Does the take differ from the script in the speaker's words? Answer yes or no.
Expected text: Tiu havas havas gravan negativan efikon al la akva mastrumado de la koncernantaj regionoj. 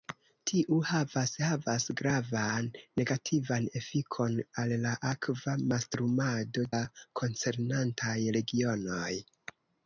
yes